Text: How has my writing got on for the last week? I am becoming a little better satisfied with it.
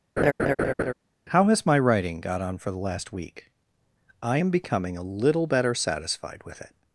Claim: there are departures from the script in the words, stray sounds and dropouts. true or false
true